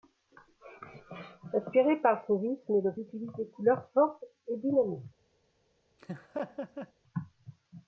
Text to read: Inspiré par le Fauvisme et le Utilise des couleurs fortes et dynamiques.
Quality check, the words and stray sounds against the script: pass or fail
fail